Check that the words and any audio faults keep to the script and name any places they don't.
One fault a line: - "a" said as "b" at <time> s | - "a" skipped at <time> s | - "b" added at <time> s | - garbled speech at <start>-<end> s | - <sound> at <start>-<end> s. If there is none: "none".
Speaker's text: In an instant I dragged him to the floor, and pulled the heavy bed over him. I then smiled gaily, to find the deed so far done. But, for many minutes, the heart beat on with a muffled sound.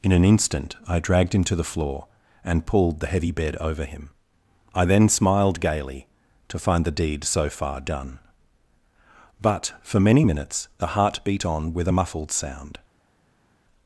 none